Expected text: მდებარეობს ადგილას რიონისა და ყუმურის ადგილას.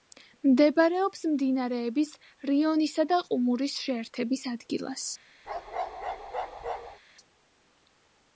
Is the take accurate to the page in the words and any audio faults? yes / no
no